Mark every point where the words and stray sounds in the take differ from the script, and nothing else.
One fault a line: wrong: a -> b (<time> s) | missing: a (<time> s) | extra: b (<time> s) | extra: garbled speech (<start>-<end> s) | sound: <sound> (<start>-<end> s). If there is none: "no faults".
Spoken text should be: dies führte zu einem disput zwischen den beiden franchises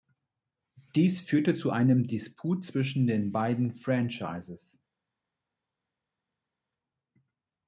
no faults